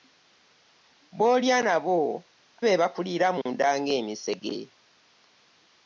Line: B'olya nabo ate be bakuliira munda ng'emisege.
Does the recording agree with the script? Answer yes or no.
no